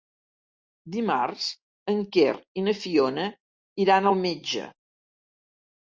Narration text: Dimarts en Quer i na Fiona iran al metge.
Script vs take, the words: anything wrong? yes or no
no